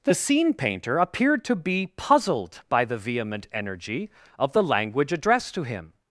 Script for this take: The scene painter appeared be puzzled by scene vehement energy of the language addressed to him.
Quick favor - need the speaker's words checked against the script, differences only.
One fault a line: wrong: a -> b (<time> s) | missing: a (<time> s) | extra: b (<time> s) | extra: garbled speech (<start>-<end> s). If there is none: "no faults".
extra: to (1.4 s)
wrong: scene -> the (2.9 s)